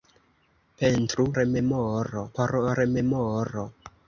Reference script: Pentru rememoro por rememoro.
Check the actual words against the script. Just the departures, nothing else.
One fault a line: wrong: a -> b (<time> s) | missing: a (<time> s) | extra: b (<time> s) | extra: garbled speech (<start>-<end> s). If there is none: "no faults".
no faults